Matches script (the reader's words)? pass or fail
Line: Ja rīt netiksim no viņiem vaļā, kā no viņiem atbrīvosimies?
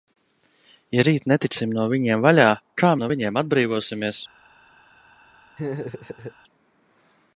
pass